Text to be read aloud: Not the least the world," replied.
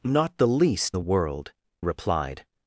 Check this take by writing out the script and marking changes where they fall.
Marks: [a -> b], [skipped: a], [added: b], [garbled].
Not the least the world," replied.